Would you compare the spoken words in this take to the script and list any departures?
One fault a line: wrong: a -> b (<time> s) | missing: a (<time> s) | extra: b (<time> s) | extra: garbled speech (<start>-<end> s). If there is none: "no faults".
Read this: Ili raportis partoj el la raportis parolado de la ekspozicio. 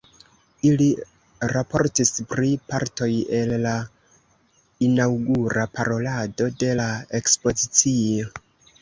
extra: pri (2.3 s)
wrong: raportis -> inaŭgura (4.9 s)